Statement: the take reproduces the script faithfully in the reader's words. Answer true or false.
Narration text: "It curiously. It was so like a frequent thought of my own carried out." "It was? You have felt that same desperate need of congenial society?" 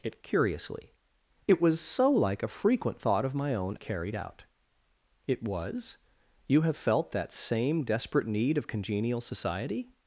true